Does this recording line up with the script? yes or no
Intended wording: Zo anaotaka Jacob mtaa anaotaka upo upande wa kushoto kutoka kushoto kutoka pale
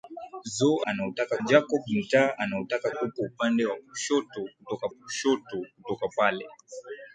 yes